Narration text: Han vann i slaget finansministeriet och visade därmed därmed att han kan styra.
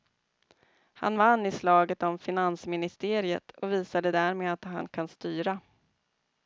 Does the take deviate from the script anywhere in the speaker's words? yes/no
yes